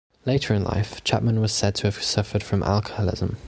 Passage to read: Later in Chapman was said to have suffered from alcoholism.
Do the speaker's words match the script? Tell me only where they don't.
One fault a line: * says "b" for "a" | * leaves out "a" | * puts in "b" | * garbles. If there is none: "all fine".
* puts in "life"